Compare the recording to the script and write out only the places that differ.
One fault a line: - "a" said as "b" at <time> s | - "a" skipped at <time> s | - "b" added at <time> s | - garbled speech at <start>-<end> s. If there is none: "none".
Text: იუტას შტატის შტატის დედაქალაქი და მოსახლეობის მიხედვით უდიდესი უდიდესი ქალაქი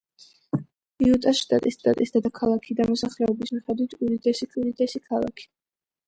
none